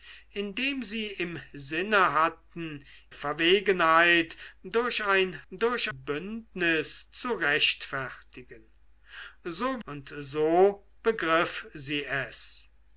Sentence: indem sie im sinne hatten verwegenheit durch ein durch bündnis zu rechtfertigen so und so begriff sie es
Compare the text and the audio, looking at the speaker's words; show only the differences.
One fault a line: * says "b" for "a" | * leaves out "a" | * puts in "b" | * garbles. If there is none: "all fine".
all fine